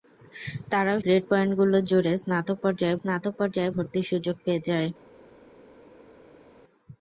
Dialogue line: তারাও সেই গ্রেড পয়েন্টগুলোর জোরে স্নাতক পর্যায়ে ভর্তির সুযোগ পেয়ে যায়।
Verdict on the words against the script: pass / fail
fail